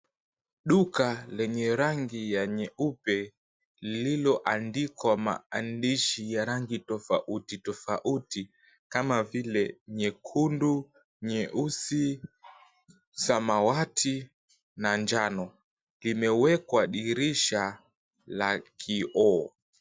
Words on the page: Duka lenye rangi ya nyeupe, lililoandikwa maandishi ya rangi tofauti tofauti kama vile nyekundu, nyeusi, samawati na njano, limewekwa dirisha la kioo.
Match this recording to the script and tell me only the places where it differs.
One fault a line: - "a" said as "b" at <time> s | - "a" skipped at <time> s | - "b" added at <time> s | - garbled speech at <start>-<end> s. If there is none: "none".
none